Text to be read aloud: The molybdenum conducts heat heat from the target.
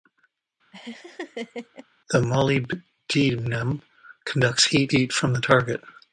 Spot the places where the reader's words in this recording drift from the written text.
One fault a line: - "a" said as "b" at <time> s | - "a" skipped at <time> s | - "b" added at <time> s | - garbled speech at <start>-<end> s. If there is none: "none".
none